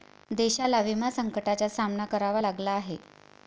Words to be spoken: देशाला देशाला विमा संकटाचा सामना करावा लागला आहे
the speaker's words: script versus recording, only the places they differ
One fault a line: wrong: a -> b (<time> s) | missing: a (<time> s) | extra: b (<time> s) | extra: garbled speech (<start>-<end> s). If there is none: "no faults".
missing: देशाला (0.8 s)